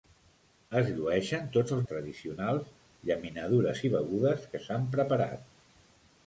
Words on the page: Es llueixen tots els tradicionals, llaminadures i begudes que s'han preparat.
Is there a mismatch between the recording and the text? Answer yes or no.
no